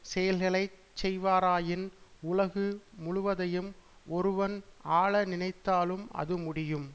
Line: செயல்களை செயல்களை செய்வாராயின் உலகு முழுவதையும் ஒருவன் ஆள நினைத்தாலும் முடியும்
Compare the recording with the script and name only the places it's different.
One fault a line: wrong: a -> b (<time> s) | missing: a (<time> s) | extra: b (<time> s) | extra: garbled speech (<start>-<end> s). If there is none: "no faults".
missing: செயல்களை (0.6 s)
extra: அது (6.1 s)